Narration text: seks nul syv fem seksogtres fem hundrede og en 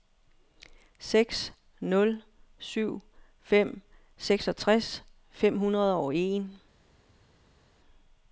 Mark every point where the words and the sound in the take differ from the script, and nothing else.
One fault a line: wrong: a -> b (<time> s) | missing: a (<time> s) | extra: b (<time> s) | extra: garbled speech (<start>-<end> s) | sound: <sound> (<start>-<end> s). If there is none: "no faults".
no faults